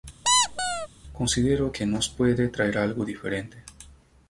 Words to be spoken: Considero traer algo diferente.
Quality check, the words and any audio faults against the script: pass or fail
fail